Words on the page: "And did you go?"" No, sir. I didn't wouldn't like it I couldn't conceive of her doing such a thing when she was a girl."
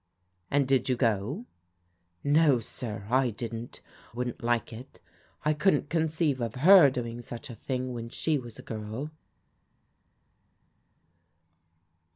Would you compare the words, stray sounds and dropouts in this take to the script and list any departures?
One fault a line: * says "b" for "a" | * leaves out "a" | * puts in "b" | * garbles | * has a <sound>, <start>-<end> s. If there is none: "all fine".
all fine